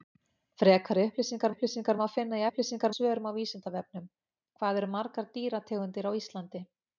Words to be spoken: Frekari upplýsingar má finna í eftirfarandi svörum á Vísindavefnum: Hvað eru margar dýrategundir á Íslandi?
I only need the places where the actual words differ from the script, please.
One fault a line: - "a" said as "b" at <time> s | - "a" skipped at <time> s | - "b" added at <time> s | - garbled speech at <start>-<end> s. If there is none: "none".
- "upplýsingar" added at 1.5 s
- "eftirfarandi" said as "upplýsingar" at 2.5 s